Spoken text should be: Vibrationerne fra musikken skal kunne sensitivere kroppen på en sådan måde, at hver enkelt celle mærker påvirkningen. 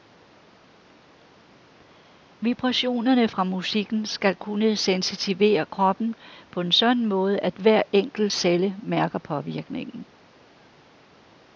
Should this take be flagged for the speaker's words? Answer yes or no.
no